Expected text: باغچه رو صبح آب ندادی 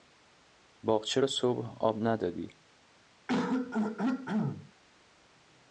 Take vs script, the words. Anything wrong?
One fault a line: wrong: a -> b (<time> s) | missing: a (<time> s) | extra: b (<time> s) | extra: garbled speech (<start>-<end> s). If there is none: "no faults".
no faults